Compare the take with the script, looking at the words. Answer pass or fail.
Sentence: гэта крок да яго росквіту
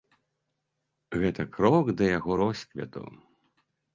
pass